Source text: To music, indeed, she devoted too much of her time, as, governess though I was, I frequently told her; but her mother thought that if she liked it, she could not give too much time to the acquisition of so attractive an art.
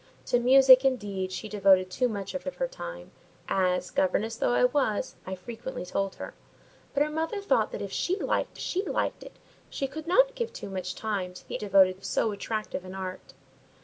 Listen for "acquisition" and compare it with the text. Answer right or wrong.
wrong